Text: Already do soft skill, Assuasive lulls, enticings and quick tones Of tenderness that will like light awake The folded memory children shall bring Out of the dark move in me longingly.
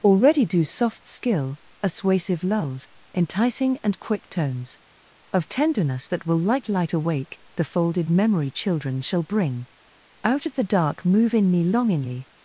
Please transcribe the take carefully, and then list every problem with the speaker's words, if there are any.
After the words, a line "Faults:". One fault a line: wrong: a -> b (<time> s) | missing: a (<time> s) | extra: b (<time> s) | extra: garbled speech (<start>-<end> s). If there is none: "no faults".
Already do soft skill, Assuasive lulls, enticing and quick tones Of tenderness that will like light awake The folded memory children shall bring Out of the dark move in me longingly.
Faults:
wrong: enticings -> enticing (3.1 s)